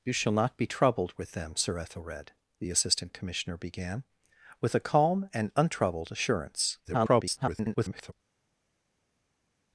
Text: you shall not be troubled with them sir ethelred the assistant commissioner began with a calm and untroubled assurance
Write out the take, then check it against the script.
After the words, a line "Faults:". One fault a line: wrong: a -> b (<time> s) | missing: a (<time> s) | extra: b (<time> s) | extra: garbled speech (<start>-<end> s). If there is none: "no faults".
you shall not be troubled with them sir ethelred the assistant commissioner began with a calm and untroubled assurance [garbled]
Faults:
extra: garbled speech (6.8-8.1 s)